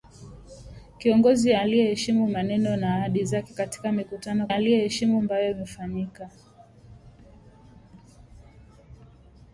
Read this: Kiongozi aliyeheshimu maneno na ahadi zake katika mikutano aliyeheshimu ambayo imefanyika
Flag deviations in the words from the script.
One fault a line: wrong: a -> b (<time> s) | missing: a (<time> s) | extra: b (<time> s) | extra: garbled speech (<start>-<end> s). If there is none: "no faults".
no faults